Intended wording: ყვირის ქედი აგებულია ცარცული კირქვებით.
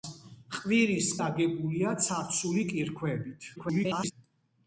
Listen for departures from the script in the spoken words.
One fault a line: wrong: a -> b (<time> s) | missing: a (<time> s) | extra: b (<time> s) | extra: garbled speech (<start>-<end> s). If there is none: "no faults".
missing: ქედი (1.1 s)
extra: garbled speech (3.6-4.1 s)